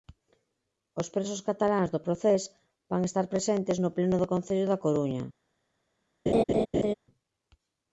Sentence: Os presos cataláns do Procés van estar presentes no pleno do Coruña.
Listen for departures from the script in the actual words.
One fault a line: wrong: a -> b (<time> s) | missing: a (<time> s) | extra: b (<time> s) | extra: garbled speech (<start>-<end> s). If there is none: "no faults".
extra: Concello da (4.3 s)